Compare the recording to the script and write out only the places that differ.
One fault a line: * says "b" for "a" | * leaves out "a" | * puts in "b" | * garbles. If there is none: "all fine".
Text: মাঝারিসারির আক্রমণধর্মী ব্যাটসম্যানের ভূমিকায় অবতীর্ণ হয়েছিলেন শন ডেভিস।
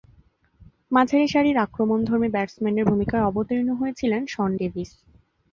all fine